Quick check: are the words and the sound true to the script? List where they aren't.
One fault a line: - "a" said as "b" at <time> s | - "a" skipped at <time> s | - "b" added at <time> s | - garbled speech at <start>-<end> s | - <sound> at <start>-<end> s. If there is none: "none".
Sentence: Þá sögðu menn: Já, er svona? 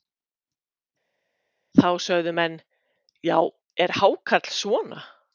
- "hákarl" added at 4.0 s